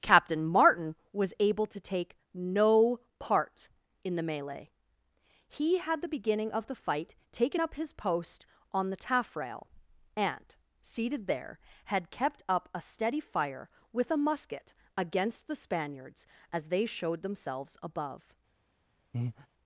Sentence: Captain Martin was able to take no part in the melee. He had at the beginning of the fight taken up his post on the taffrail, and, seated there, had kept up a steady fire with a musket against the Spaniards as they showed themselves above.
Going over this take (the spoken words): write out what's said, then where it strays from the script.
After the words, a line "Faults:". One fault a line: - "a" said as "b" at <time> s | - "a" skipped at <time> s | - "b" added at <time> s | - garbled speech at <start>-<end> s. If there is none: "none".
Captain Martin was able to take no part in the melee. He had the beginning of the fight taken up his post on the taffrail, and, seated there, had kept up a steady fire with a musket against the Spaniards as they showed themselves above.
Faults:
- "at" skipped at 6.0 s